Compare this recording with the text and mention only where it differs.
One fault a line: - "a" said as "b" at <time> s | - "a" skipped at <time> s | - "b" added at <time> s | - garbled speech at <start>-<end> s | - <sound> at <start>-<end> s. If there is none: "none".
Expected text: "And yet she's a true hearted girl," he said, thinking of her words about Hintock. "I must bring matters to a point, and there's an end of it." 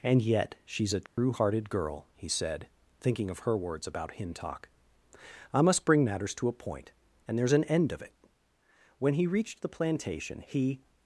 - dropout at 1.1-1.2 s
- "When he reached the plantation he" added at 9.0 s